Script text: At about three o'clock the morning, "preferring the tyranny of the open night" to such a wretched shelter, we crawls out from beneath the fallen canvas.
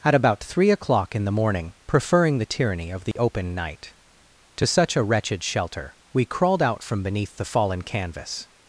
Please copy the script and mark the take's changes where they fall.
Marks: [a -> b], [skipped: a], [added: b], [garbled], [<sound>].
At about three o'clock [added: in] the morning, "preferring the tyranny of the [dropout] open night" to such a wretched shelter, we [crawls -> crawled] out from beneath the fallen canvas.